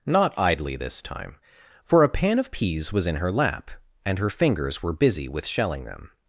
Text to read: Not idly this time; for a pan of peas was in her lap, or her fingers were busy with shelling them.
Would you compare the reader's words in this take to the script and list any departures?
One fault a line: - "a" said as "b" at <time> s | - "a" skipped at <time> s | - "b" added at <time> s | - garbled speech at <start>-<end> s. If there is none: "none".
- "or" said as "and" at 4.1 s